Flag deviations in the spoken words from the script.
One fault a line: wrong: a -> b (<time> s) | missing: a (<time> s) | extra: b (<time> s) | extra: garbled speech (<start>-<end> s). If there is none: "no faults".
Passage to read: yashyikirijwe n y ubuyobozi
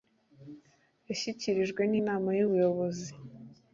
extra: inama (2.0 s)